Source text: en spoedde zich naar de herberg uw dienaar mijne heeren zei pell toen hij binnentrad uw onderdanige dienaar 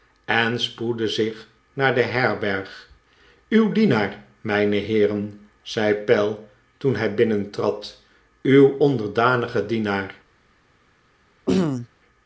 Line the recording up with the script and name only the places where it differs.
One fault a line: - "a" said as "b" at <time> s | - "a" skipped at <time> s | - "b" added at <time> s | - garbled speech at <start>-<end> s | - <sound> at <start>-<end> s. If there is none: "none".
- throat clearing at 11.5-11.9 s